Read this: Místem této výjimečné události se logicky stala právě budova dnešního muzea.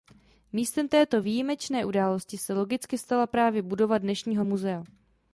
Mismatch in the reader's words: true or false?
false